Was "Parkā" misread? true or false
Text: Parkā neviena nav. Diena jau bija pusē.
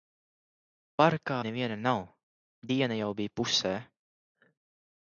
false